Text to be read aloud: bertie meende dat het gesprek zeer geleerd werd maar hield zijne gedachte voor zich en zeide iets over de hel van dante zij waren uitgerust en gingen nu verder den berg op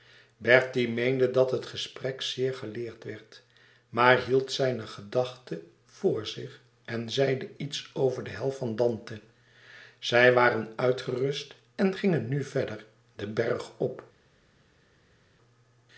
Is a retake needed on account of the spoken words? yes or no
no